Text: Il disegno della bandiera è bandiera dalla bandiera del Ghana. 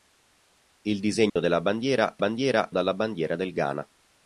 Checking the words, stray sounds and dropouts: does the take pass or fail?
fail